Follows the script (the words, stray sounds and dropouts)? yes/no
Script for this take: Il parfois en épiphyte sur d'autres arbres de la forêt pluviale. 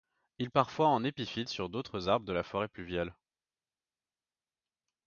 yes